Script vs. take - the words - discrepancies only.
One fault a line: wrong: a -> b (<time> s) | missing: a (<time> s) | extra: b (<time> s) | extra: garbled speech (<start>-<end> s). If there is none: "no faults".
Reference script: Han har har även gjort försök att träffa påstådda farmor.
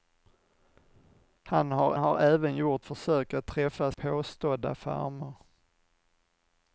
no faults